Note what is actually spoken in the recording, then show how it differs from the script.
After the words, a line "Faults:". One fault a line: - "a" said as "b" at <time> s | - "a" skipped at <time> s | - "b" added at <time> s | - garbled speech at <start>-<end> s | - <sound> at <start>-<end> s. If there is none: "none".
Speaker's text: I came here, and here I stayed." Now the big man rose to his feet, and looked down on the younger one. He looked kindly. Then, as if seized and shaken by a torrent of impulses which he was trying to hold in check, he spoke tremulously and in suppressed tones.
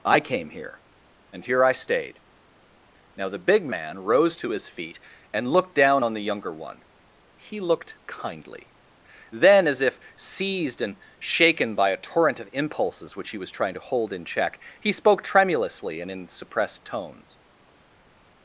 I came here, and here I stayed." Now the big man rose to his feet, and looked down on the younger one. He looked kindly. Then, as if seized and shaken by a torrent of impulses which he was trying to hold in check, he spoke tremulously and in suppressed tones.
Faults:
none